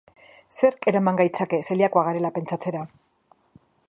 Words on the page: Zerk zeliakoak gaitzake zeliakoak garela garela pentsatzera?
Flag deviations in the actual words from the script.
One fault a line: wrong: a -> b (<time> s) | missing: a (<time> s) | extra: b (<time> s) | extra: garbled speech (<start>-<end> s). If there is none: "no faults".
wrong: zeliakoak -> eraman (0.9 s)
missing: garela (2.3 s)